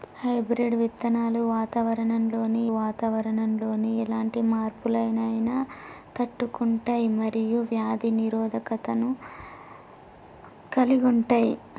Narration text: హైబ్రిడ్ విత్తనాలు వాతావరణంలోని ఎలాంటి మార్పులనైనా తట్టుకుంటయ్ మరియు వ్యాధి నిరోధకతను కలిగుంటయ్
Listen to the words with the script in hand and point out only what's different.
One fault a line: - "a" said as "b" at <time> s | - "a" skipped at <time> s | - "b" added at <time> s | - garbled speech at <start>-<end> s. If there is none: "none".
- "వాతావరణంలోని" added at 2.7 s